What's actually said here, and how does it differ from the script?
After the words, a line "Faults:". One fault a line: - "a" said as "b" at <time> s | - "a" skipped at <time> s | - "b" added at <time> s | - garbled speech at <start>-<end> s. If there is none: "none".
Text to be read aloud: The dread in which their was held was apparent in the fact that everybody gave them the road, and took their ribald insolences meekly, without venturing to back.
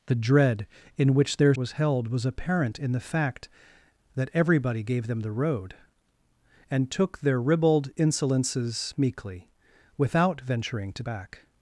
The dread in which their was held was apparent in the fact that everybody gave them the road, and took their ribald insolences meekly, without venturing to back.
Faults:
none